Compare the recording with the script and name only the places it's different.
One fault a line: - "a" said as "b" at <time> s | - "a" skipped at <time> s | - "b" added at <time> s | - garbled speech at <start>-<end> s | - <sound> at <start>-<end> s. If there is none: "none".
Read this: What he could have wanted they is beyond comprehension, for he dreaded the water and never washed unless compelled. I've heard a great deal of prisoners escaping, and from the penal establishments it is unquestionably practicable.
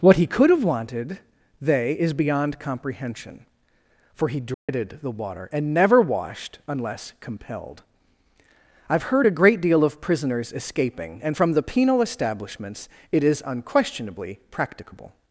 - dropout at 4.5-4.7 s